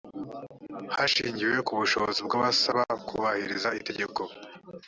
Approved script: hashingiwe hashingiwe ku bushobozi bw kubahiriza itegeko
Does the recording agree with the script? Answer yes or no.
no